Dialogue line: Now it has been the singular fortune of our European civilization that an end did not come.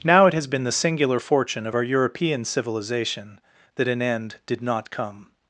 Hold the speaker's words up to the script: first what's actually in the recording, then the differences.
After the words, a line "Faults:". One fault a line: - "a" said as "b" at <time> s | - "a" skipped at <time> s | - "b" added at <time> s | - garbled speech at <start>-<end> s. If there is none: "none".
Now it has been the singular fortune of our European civilization that an end did not come.
Faults:
none